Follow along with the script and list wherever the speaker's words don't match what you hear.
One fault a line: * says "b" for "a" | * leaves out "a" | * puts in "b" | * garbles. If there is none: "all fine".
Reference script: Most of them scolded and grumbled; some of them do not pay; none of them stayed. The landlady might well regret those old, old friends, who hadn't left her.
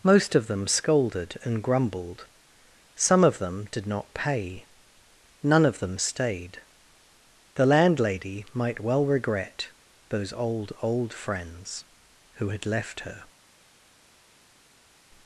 * says "did" for "do"
* says "had" for "hadn't"